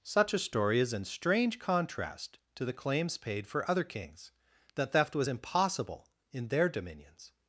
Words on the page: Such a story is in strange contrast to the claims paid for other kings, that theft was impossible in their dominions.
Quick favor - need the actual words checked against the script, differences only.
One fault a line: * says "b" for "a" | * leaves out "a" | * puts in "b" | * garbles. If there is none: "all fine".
all fine